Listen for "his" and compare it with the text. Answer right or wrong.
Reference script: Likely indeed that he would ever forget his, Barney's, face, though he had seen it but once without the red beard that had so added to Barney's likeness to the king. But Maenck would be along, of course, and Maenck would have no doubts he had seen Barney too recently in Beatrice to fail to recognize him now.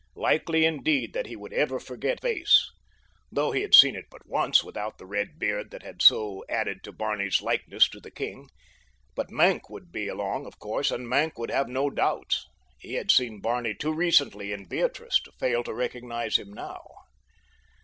wrong